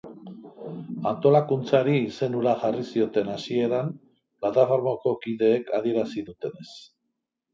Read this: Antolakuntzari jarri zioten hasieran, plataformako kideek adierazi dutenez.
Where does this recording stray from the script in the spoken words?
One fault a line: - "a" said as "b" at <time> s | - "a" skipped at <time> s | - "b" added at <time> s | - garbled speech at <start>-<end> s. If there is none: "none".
- "izen hura" added at 2.0 s